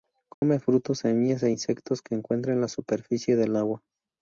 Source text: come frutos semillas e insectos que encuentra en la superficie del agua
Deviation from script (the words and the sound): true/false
true